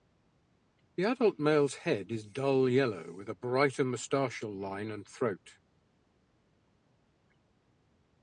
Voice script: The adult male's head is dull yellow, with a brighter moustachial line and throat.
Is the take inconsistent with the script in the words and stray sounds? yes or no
no